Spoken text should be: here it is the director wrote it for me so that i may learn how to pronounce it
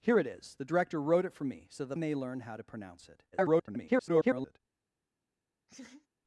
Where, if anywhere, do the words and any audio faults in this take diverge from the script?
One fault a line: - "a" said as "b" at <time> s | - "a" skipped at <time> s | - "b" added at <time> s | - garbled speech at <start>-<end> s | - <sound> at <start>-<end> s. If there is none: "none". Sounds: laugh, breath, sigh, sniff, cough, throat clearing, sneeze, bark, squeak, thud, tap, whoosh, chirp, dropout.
- "i" skipped at 2.0 s
- garbled speech at 3.3-4.6 s
- laugh at 5.7-6.1 s